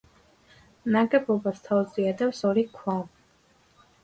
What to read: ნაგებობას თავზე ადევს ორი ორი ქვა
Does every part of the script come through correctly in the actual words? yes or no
no